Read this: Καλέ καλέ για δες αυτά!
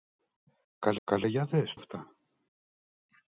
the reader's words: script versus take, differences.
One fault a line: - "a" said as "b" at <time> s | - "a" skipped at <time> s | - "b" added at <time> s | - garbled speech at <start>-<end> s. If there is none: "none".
none